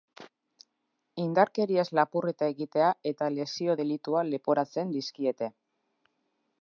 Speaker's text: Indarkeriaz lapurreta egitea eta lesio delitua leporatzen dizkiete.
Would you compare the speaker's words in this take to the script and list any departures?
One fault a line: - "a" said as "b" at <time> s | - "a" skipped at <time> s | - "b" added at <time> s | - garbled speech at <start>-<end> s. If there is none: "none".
none